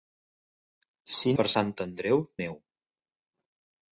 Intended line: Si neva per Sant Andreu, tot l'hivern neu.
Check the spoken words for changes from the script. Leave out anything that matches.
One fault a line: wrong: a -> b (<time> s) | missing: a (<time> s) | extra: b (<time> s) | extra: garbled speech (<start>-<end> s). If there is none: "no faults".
missing: neva (1.3 s)
missing: tot l'hivern (2.2 s)